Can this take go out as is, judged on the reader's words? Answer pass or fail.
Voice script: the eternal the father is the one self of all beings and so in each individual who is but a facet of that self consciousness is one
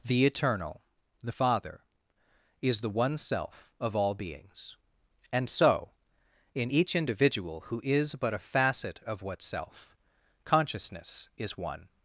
fail